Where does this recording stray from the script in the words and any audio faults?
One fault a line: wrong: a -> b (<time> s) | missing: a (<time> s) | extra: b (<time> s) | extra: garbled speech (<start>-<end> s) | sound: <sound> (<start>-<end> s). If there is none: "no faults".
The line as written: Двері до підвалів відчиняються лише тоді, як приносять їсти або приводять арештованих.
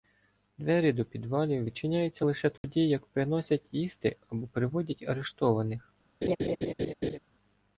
sound: dropout (2.6-2.6 s)
sound: laugh (6.2-7.2 s)